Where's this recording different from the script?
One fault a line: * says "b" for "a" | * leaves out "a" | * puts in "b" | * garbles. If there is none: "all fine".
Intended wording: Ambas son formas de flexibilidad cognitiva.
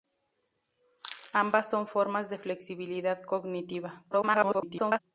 * garbles